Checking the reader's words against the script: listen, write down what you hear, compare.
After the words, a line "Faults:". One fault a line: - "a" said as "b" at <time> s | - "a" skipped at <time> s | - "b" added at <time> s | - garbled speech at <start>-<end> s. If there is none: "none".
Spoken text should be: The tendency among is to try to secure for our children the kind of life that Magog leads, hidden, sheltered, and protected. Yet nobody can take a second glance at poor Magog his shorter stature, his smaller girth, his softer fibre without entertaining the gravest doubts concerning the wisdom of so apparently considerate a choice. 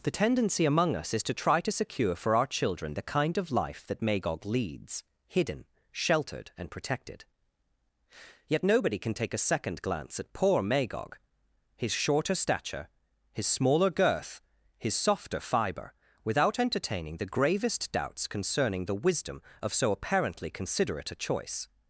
The tendency among us is to try to secure for our children the kind of life that Magog leads, hidden, sheltered, and protected. Yet nobody can take a second glance at poor Magog his shorter stature, his smaller girth, his softer fibre without entertaining the gravest doubts concerning the wisdom of so apparently considerate a choice.
Faults:
- "us" added at 1.0 s